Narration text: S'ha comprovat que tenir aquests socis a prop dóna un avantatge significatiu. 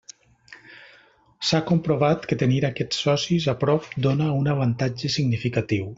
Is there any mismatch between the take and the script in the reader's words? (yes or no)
no